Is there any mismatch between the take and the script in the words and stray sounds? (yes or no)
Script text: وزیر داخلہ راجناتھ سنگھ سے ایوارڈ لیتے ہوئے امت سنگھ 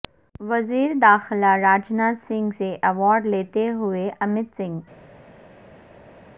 no